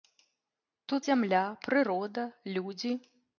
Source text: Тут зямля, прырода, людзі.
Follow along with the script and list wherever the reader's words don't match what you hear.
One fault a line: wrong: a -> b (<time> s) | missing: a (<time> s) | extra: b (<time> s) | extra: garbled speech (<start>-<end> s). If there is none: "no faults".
no faults